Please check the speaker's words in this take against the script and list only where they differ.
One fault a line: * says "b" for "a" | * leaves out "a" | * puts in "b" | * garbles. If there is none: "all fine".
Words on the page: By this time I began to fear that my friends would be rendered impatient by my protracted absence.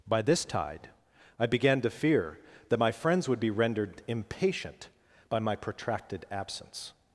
* says "tide" for "time"